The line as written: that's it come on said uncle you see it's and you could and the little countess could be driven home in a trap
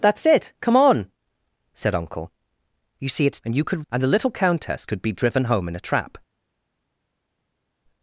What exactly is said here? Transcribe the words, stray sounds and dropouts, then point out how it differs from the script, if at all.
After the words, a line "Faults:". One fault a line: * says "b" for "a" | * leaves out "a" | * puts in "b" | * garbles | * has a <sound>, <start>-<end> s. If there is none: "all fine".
that's it come on said uncle you see it's and you could and the little countess could be driven home in a trap
Faults:
all fine